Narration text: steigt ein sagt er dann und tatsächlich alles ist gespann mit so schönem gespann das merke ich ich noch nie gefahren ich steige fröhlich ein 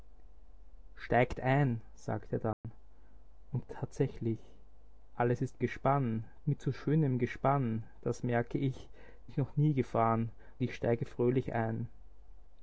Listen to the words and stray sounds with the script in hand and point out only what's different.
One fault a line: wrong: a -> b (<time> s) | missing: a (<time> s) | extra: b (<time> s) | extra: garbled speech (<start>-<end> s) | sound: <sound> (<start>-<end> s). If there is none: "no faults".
sound: dropout (2.5-2.6 s)